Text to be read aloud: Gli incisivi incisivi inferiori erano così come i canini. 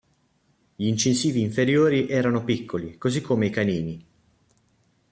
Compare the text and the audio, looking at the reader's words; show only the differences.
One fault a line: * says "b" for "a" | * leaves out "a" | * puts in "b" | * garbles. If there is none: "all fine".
* leaves out "incisivi"
* puts in "piccoli"